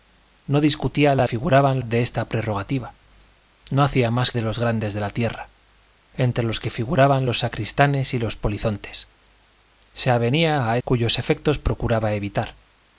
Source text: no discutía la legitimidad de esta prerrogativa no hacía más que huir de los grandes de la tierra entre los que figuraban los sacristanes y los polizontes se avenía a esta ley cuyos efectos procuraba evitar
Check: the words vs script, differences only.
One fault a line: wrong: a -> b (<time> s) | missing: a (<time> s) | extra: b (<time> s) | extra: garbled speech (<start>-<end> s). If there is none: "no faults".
wrong: legitimidad -> figuraban (1.2 s)
missing: que huir (4.3 s)
missing: esta ley (10.8 s)